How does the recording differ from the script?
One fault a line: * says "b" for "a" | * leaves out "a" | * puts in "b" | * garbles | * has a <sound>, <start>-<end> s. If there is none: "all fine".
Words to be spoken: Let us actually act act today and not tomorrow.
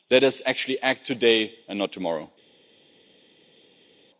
* leaves out "act"